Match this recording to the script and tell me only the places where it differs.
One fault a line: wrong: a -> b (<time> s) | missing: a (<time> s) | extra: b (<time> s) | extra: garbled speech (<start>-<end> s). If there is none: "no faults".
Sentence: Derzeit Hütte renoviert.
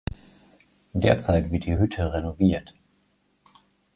extra: wird die (1.5 s)